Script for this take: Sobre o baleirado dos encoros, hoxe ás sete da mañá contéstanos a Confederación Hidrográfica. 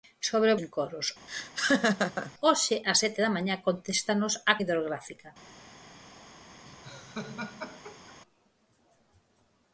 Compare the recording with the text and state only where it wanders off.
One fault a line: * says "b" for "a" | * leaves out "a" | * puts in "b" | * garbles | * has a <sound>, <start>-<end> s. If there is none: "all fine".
* leaves out "baleirado dos"
* has a laugh, 1.3-2.3 s
* leaves out "Confederación"
* has a laugh, 6.6-8.2 s